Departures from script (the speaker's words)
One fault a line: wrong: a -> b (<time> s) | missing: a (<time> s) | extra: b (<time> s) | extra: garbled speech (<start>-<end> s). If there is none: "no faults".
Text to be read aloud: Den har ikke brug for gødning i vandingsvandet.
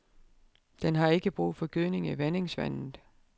no faults